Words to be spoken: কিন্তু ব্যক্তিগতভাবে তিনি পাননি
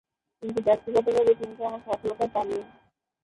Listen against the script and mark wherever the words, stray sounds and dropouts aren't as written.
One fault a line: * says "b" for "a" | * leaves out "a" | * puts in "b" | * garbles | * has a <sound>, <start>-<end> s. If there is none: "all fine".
* puts in "তেমন সফলতা"